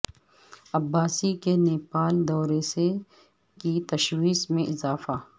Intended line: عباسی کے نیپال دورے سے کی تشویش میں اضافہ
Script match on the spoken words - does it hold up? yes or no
yes